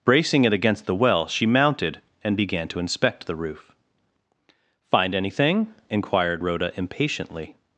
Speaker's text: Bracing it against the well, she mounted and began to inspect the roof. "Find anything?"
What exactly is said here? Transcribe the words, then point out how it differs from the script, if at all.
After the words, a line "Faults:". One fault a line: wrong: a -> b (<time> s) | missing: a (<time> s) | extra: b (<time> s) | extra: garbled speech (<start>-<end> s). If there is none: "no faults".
Bracing it against the well, she mounted and began to inspect the roof. "Find anything?" inquired Rhoda impatiently
Faults:
extra: inquired Rhoda impatiently (5.9 s)